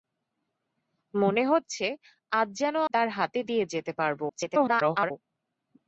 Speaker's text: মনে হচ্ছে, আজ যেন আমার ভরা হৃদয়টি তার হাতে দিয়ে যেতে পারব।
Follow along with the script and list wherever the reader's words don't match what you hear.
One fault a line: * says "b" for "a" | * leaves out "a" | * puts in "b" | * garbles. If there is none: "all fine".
* leaves out "আমার ভরা হৃদয়টি"
* garbles